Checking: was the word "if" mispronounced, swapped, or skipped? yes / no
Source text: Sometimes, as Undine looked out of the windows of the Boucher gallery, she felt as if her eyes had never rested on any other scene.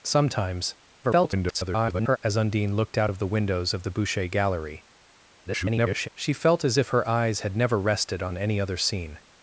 no